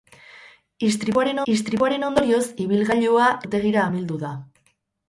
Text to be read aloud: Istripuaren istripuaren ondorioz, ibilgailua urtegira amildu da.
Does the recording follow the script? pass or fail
pass